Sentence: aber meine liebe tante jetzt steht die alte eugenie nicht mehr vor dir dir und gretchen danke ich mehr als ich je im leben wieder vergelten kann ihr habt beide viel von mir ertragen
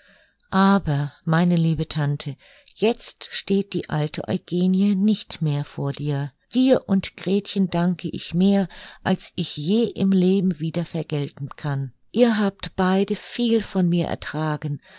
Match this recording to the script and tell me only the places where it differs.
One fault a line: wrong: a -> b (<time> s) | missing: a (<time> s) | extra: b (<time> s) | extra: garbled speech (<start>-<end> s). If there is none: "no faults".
no faults